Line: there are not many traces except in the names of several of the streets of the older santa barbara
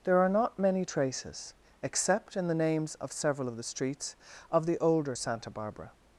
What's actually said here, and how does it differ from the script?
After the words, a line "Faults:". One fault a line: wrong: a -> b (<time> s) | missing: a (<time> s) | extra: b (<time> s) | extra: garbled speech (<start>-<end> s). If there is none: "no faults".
there are not many traces except in the names of several of the streets of the older santa barbara
Faults:
no faults